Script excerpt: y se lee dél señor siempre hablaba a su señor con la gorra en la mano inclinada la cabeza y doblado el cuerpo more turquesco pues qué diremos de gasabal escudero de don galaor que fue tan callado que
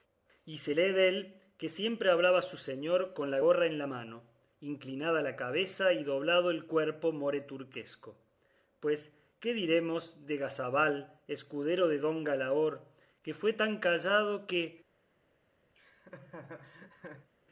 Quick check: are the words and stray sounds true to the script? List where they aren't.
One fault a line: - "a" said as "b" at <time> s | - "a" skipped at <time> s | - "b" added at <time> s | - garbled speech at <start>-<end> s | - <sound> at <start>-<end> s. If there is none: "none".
- "señor" said as "que" at 1.6 s
- laugh at 15.7-17.3 s